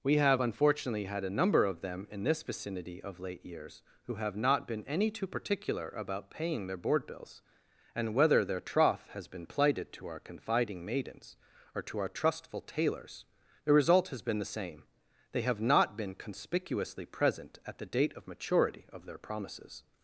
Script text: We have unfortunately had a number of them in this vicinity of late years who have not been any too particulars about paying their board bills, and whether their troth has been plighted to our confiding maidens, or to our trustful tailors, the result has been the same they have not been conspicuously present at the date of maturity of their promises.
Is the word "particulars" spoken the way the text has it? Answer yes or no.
no